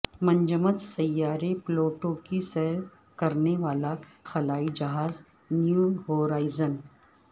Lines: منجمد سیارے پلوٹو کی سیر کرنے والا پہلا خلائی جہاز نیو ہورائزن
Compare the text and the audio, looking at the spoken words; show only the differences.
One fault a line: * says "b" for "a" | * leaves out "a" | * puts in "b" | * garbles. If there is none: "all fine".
* leaves out "پہلا"